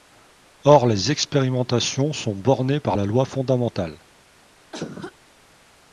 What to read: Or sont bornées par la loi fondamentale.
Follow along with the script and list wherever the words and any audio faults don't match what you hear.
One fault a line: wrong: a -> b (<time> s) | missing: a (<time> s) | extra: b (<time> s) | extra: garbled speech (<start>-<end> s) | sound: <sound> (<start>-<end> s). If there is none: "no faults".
extra: les expérimentations (0.9 s)
sound: cough (4.7-5.1 s)